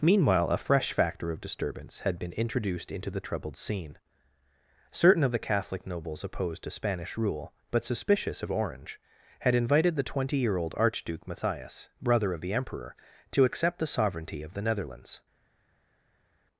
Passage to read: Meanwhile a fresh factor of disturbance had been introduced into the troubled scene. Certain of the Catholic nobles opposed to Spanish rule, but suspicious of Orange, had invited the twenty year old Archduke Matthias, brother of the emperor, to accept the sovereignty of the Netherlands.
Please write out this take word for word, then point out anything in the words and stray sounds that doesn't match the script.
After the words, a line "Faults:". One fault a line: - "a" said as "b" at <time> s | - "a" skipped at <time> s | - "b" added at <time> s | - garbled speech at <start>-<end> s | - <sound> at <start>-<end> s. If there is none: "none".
Meanwhile a fresh factor of disturbance had been introduced into the troubled scene. Certain of the Catholic nobles opposed to Spanish rule, but suspicious of Orange, had invited the twenty year old Archduke Matthias, brother of the emperor, to accept the sovereignty of the Netherlands.
Faults:
none